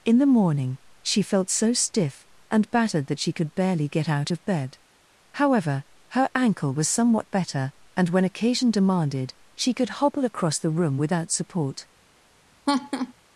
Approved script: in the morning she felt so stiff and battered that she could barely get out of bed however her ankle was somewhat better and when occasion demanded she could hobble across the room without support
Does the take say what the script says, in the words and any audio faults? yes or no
no